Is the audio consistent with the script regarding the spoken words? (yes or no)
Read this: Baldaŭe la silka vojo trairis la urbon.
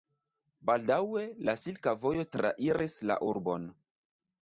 yes